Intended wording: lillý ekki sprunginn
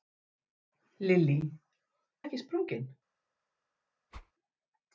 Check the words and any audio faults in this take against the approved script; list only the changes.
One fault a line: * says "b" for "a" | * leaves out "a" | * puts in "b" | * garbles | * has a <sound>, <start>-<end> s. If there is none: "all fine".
* has a whoosh, 4.1-4.3 s